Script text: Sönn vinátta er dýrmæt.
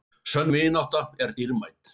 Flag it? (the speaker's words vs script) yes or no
no